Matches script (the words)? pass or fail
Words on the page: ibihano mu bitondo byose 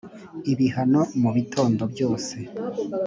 pass